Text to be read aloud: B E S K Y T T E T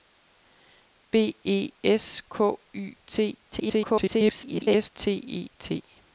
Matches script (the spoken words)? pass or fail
fail